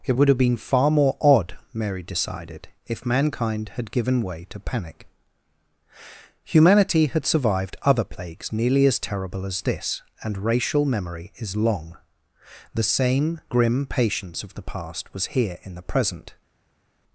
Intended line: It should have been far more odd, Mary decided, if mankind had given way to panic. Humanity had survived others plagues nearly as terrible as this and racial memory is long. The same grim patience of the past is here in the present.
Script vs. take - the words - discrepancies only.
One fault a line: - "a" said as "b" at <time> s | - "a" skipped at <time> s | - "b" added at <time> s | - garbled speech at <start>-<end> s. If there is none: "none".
- "should" said as "would" at 0.1 s
- "others" said as "other" at 7.8 s
- "is" said as "was" at 15.1 s